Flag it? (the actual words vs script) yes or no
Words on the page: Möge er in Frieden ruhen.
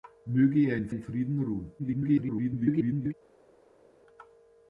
yes